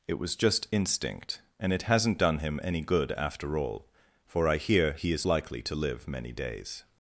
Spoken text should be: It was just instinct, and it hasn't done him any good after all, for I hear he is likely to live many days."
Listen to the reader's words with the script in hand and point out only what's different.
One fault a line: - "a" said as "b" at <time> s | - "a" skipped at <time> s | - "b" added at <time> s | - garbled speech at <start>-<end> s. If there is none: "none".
none